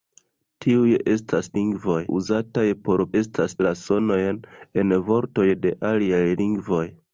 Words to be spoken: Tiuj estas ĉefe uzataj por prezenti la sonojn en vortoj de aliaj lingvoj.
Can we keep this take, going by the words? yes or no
no